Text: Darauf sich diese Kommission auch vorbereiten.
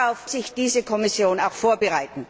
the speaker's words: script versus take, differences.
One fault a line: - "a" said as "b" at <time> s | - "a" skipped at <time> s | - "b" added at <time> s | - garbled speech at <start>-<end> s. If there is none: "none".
none